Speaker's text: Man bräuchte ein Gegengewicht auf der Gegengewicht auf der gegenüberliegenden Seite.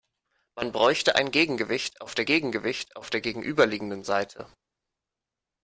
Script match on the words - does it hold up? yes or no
yes